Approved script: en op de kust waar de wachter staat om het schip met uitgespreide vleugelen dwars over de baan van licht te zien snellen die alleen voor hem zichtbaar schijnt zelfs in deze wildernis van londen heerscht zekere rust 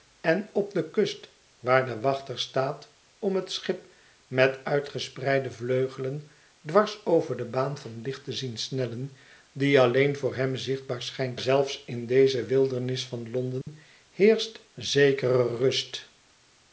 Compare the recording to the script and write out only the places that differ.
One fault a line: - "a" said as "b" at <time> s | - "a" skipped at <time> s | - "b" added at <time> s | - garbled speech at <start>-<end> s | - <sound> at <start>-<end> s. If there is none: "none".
- dropout at 13.6-13.7 s